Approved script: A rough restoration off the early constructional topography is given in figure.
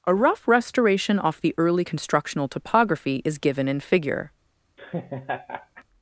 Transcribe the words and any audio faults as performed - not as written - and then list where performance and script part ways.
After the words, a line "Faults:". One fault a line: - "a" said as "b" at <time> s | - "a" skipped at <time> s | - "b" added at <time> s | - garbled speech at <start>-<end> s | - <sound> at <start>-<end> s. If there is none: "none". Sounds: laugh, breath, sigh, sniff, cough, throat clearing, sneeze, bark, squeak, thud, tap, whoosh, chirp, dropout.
A rough restoration off the early constructional topography is given in figure.
Faults:
- laugh at 4.8-5.8 s